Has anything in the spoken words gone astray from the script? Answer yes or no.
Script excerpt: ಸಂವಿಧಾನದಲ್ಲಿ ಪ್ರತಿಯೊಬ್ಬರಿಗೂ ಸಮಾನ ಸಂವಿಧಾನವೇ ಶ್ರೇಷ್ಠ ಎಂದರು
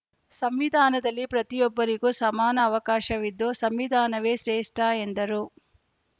yes